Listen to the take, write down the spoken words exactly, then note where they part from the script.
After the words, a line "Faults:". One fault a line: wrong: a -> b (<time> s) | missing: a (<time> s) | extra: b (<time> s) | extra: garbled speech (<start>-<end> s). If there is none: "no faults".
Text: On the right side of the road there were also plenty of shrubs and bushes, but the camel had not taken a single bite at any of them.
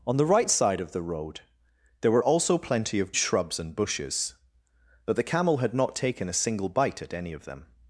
On the right side of the road there were also plenty of shrubs and bushes, but the camel had not taken a single bite at any of them.
Faults:
no faults